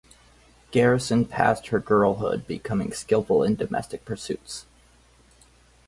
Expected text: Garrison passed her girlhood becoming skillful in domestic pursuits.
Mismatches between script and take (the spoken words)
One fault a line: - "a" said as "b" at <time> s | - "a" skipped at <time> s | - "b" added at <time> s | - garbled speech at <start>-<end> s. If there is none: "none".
none